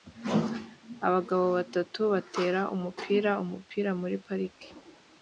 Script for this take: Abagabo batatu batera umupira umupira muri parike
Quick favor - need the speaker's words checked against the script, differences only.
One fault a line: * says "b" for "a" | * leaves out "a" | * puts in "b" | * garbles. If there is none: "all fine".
all fine